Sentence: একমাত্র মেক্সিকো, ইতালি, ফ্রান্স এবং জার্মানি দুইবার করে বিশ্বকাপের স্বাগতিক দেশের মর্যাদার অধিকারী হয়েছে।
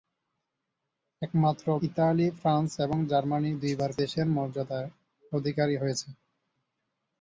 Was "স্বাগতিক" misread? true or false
true